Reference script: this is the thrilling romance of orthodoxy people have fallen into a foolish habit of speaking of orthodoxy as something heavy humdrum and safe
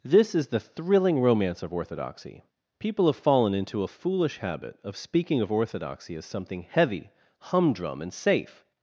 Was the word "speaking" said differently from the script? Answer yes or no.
no